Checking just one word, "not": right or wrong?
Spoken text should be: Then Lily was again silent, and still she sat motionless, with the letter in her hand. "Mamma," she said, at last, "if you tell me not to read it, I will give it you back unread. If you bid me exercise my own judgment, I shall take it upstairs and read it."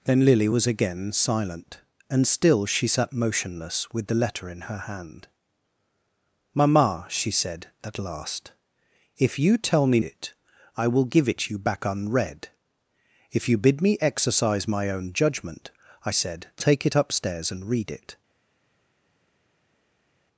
wrong